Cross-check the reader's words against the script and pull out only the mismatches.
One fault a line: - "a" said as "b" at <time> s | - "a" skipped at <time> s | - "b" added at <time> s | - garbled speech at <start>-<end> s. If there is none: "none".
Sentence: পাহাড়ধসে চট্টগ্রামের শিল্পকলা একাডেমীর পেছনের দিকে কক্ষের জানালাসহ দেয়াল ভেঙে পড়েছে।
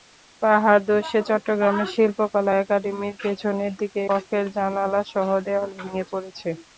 none